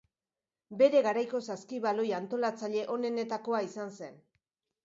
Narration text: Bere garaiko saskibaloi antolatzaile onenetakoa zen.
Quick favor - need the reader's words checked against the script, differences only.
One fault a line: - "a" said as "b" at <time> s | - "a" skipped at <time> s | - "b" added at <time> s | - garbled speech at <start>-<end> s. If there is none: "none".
- "izan" added at 3.7 s